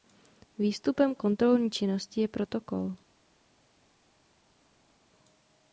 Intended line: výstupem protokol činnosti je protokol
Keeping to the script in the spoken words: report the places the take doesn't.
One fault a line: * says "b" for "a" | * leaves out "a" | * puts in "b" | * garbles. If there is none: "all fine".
* says "kontrolní" for "protokol"